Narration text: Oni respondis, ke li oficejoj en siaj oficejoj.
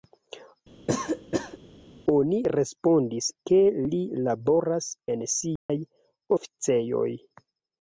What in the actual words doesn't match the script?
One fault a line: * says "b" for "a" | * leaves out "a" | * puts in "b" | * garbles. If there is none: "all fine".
* says "laboras" for "oficejoj"